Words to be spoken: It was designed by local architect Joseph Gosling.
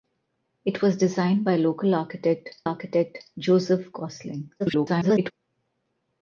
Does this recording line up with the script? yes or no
no